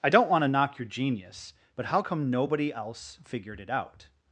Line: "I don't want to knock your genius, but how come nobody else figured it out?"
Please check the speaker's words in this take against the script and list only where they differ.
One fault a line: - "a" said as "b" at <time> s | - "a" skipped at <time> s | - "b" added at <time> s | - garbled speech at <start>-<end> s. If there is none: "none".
none